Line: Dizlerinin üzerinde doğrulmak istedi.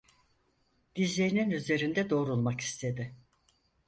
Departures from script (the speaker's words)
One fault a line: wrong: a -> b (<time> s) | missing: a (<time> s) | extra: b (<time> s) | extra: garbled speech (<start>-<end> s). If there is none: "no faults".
no faults